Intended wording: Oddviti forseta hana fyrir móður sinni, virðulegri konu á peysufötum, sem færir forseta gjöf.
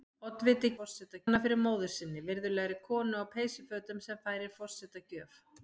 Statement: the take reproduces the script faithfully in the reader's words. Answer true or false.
true